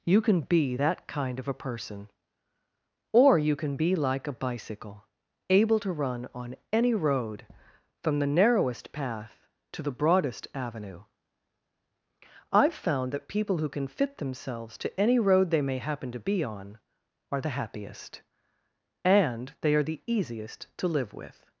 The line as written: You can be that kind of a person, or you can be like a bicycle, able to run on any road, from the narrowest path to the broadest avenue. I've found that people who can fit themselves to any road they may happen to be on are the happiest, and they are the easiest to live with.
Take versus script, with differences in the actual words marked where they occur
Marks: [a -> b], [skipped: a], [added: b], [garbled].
You can be that kind of a person, or you can be like a bicycle, able to run on any road, from the narrowest path to the broadest avenue. I've found that people who can fit themselves to any road they may happen to be on are the happiest, and they are the easiest to live with.